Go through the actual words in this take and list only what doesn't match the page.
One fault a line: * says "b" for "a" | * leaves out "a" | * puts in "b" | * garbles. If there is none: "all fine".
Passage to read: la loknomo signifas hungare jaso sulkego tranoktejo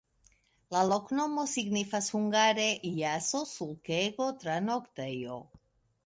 all fine